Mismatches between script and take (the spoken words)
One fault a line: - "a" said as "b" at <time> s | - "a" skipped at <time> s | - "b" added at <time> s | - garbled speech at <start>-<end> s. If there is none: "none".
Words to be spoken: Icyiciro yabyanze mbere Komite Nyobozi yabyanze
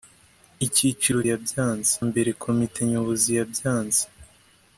none